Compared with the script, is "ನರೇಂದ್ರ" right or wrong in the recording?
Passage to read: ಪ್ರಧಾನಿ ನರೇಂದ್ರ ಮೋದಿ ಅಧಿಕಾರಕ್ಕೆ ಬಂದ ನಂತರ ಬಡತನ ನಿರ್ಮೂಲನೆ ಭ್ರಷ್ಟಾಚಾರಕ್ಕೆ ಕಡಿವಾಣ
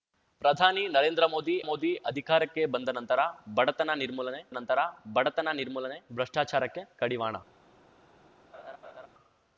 right